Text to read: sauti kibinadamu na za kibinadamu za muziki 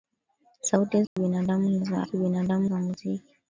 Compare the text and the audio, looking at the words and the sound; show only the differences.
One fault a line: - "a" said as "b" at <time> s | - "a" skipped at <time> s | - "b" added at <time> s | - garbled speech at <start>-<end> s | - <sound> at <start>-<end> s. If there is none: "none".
- dropout at 1.1-1.2 s